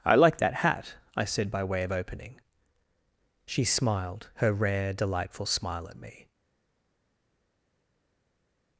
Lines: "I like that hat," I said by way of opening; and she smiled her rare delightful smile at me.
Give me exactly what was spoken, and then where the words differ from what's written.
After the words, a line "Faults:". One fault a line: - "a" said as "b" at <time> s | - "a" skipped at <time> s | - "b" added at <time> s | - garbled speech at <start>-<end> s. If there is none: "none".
"I like that hat," I said by way of opening; she smiled her rare delightful smile at me.
Faults:
- "and" skipped at 2.4 s